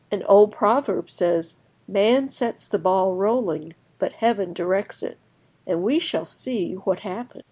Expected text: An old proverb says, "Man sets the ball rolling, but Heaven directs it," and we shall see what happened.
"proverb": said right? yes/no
yes